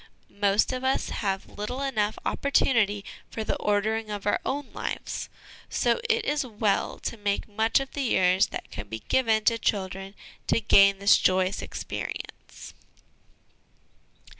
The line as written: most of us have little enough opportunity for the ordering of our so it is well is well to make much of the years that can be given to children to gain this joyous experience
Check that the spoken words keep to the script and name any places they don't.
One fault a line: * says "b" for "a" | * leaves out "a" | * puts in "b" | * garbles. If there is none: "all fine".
* puts in "own lives"
* leaves out "is well"